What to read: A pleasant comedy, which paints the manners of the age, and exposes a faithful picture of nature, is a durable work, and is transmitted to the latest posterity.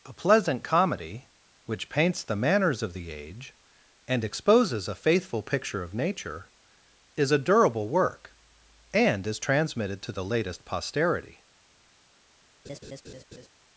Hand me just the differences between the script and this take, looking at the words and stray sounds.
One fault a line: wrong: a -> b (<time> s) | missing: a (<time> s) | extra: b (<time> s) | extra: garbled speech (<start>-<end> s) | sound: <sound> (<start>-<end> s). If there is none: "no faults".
sound: laugh (12.6-13.5 s)